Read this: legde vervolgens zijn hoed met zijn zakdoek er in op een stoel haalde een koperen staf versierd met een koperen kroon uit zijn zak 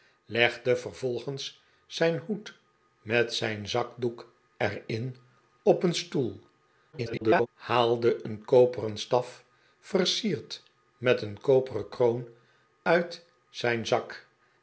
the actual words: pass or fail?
fail